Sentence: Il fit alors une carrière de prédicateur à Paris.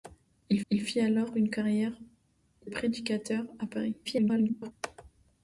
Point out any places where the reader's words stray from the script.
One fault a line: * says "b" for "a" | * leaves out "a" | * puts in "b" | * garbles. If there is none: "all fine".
* puts in "il"
* leaves out "de"
* garbles